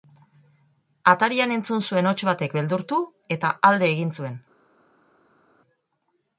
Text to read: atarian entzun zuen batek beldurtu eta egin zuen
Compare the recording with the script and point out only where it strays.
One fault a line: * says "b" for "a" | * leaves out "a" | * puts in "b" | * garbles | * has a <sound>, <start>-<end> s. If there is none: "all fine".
* puts in "hots"
* puts in "alde"